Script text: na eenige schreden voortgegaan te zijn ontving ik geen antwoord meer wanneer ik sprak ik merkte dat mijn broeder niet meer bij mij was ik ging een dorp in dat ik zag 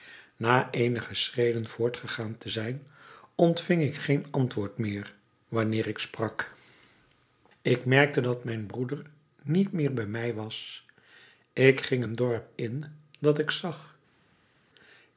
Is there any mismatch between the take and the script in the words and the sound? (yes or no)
no